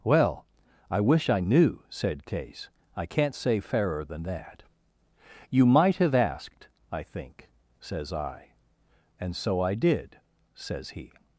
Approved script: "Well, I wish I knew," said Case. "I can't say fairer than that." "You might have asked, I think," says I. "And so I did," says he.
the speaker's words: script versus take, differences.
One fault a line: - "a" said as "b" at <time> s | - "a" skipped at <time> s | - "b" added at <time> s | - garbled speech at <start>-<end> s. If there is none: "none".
none